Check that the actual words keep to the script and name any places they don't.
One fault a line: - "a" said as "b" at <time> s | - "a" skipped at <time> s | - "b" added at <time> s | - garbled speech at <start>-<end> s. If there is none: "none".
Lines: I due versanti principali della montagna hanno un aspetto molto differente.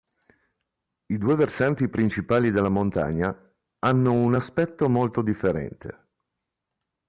none